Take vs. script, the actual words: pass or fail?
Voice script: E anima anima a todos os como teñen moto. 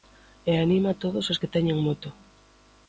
fail